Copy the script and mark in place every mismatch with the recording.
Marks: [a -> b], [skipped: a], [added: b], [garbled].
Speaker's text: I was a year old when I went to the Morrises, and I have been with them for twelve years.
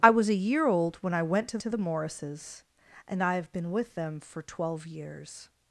I was a year old when I went to [added: to] the Morrises, and I have been with them for twelve years.